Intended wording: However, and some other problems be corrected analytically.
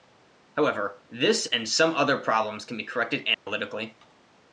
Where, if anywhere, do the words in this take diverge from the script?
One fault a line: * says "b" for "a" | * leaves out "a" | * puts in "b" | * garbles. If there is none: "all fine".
* puts in "this"
* puts in "can"